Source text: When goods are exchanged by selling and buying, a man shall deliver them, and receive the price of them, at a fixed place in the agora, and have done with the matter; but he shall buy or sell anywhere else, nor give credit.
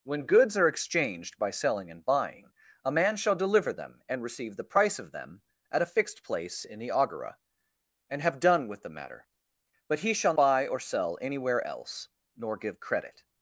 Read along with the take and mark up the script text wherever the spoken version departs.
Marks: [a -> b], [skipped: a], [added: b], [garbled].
When goods are exchanged by selling and buying, a man shall deliver them, and receive the price of them, at a fixed place in the agora, and have done with the matter; but he shall buy or sell anywhere else, nor give credit.